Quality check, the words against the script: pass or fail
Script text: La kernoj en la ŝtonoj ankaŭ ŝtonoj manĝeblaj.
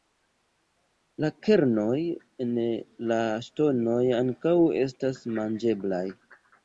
fail